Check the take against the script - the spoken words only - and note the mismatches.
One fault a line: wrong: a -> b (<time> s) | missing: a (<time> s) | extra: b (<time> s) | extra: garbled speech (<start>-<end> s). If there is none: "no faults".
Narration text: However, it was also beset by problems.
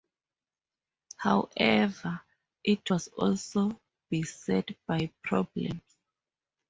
no faults